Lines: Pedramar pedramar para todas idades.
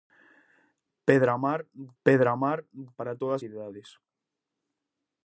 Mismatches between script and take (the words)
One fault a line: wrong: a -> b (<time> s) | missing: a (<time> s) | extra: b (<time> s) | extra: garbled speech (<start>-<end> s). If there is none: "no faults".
no faults